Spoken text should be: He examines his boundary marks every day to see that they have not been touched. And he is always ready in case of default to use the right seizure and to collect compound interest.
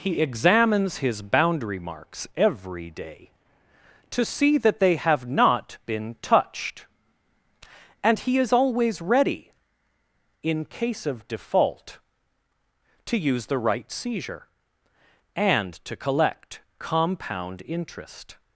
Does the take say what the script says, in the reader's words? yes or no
yes